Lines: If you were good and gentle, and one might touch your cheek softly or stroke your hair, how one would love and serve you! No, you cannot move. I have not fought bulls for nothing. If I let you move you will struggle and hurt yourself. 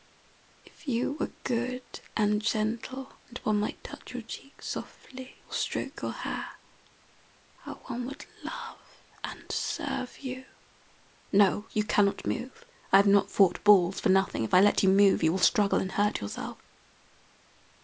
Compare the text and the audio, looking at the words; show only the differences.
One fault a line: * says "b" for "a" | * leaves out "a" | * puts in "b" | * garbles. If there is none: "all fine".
all fine